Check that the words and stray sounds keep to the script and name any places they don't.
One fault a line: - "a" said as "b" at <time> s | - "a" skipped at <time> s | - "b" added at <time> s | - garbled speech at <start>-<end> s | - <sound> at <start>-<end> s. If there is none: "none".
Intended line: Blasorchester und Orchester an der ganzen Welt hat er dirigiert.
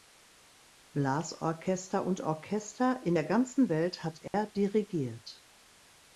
- "an" said as "in" at 3.0 s
- dropout at 4.3-4.3 s